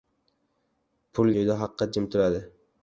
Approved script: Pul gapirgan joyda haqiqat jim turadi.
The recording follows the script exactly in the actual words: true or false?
false